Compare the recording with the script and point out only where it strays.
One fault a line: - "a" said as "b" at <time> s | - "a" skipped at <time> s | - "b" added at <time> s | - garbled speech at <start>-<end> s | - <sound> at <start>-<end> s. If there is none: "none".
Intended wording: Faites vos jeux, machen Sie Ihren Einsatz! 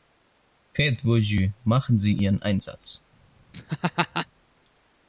- laugh at 3.5-4.3 s